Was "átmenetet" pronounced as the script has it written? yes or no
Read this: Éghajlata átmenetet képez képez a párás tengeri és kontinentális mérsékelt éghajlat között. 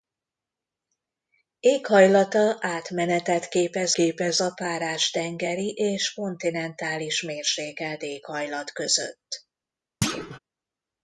yes